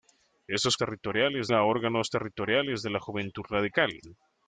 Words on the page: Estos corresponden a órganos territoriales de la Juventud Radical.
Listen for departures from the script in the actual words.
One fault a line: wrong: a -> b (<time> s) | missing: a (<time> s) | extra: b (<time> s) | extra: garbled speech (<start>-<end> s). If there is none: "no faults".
wrong: corresponden -> territoriales (0.8 s)